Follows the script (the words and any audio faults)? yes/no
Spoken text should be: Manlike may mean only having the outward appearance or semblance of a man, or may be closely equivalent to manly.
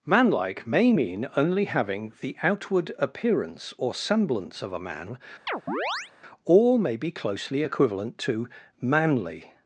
no